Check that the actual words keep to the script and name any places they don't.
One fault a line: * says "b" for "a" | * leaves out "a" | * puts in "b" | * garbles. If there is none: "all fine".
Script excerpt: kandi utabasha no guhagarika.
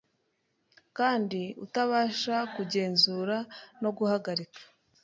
* puts in "kugenzura"